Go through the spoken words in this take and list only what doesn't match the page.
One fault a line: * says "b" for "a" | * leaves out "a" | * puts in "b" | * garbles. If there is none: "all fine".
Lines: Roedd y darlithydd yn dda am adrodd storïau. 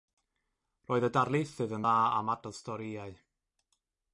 all fine